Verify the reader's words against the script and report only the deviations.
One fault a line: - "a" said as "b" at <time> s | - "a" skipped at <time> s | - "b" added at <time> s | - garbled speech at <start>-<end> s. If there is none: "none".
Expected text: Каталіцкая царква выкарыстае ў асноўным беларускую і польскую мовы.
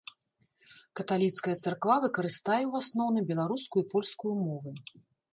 none